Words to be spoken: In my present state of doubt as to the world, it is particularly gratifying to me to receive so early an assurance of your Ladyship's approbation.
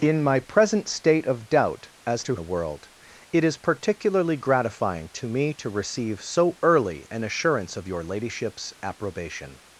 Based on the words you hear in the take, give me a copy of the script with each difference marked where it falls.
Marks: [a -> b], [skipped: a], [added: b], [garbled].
In my present state of doubt as to the world, it is particularly gratifying to me to receive so early an assurance of your Ladyship's approbation.